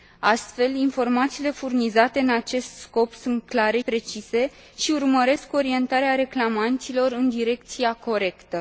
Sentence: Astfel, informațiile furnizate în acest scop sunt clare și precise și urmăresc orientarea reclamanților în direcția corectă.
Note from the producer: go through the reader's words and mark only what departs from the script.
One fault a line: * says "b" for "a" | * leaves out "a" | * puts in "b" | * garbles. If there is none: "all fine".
* leaves out "și"